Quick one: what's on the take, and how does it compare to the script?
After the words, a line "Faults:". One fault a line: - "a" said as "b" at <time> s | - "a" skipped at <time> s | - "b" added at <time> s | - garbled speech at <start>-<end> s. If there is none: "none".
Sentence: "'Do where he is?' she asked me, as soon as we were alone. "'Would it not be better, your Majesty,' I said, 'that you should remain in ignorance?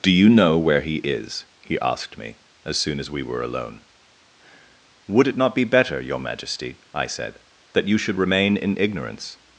"'Do you know where he is?' he asked me, as soon as we were alone. "'Would it not be better, your Majesty,' I said, 'that you should remain in ignorance?
Faults:
- "you know" added at 0.1 s
- "she" said as "he" at 1.6 s